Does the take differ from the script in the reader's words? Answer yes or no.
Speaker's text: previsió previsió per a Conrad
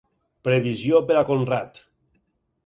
yes